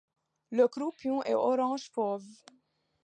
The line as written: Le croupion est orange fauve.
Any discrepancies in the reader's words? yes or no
no